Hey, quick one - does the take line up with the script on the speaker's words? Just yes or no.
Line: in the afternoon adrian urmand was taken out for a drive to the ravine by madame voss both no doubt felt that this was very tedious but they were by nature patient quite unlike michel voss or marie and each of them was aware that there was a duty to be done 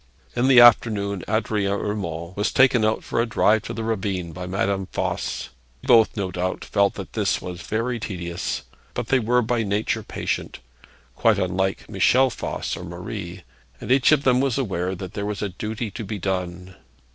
yes